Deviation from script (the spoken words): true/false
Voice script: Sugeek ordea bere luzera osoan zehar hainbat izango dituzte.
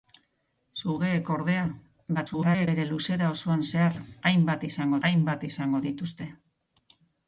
true